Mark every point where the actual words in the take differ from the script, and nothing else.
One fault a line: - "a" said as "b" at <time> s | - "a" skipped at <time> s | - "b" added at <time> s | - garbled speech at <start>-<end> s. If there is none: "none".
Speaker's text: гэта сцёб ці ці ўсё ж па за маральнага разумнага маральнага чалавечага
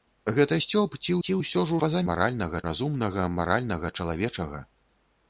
none